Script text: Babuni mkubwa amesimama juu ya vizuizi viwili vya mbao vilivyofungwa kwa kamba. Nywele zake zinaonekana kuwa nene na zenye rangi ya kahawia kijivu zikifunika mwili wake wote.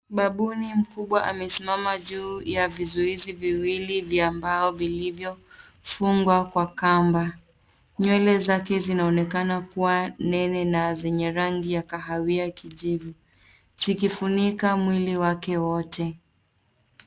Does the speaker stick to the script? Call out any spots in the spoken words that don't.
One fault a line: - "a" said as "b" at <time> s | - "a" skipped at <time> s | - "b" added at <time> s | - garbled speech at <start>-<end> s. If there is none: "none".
none